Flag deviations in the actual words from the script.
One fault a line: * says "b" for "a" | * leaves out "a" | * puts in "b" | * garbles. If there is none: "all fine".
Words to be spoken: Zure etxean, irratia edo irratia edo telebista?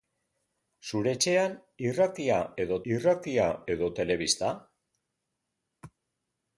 all fine